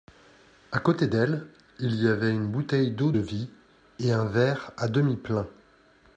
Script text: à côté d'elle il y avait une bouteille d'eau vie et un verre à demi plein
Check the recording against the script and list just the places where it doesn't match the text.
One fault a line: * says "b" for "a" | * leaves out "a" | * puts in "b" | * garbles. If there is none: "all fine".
all fine